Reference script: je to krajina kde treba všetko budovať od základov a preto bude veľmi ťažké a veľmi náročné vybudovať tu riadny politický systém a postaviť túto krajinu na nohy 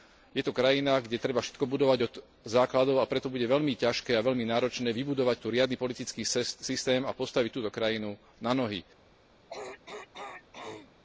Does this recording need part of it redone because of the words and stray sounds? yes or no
yes